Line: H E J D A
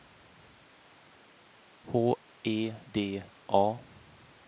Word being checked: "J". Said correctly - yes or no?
no